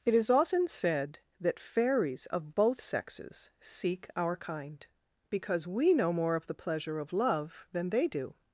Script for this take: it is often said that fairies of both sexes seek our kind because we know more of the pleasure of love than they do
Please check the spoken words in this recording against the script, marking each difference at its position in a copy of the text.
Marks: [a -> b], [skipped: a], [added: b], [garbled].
it is often said that fairies of both sexes seek our kind because we know more of the pleasure of love than they do